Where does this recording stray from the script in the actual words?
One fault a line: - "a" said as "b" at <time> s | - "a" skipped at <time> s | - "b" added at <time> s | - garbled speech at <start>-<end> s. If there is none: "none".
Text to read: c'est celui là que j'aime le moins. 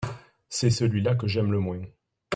none